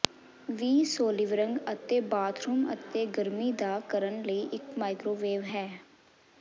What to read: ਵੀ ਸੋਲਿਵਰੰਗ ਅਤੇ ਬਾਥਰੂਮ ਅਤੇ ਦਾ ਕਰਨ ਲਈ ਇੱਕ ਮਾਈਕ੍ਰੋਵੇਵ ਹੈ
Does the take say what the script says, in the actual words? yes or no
no